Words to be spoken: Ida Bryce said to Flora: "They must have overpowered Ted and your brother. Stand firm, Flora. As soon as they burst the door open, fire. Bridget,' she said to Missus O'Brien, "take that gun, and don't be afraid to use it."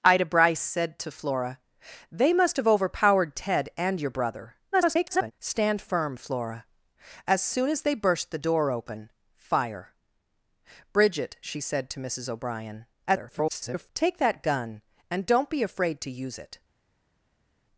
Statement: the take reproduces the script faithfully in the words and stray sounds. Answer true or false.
false